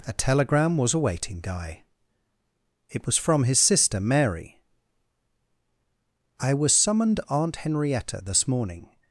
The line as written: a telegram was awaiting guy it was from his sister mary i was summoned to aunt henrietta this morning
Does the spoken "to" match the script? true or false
false